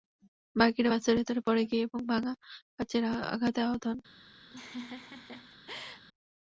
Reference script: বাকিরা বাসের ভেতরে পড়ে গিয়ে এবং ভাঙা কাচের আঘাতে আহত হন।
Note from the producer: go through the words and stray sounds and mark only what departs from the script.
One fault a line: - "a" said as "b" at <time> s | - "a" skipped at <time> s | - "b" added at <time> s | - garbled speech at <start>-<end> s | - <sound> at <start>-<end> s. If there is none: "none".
- laugh at 4.5-6.0 s